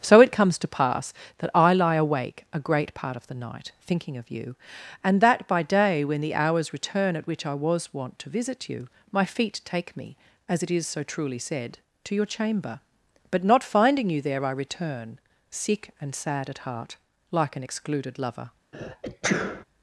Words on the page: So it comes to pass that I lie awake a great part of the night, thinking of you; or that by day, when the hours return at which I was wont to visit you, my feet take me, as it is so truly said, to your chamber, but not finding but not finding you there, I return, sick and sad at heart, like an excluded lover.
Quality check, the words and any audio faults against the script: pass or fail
fail